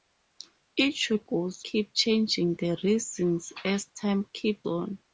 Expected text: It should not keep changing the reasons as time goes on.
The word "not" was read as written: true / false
false